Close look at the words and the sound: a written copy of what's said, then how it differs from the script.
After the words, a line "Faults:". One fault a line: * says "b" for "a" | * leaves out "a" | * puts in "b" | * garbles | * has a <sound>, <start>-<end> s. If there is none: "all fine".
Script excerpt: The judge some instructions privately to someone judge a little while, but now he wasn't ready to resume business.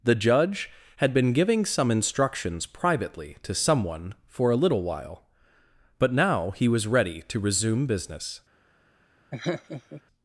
The judge had been giving some instructions privately to someone for a little while, but now he was ready to resume business.
Faults:
* puts in "had been giving"
* says "for" for "judge"
* says "was" for "wasn't"
* has a laugh, 9.3-10.0 s